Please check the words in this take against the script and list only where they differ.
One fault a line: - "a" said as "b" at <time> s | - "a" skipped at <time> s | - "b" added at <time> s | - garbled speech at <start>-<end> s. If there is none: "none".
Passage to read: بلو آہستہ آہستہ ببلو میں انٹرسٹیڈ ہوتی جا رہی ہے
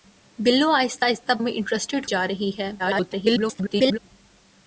- "ببلو" skipped at 1.3 s
- "ہوتی" skipped at 2.0 s
- garbled speech at 2.8-4.0 s